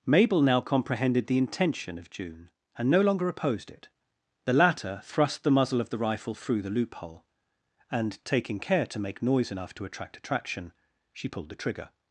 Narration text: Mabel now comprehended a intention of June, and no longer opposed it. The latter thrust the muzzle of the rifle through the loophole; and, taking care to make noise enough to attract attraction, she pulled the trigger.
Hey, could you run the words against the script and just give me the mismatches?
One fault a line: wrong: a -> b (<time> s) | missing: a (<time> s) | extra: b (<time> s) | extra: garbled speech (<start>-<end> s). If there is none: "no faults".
wrong: a -> the (1.3 s)